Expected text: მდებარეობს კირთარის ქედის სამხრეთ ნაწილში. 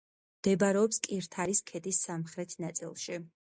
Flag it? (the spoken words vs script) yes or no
no